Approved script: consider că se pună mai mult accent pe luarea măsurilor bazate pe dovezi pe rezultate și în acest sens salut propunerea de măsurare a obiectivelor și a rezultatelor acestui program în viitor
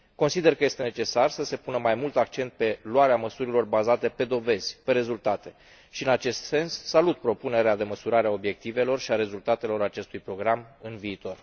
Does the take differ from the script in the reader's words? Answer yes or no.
yes